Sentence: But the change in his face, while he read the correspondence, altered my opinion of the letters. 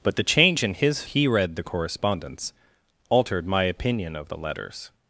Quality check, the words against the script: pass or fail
fail